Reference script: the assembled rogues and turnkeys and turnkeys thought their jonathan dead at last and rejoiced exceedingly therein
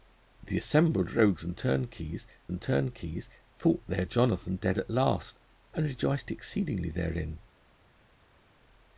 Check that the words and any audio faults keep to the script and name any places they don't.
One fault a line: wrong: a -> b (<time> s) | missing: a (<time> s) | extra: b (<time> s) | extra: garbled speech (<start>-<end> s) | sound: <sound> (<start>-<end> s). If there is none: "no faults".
no faults